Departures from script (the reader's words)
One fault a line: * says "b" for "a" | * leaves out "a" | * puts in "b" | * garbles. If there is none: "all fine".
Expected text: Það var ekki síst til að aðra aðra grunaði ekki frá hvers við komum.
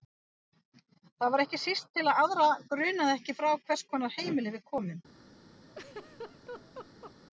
* leaves out "aðra"
* puts in "konar heimili"